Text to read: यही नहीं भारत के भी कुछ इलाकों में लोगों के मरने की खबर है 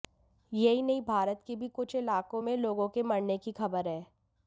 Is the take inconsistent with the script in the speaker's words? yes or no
no